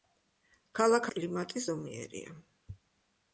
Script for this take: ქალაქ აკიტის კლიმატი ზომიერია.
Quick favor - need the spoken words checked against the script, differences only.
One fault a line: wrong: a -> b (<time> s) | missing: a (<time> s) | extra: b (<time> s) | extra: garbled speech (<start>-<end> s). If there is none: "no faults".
missing: აკიტის (1.1 s)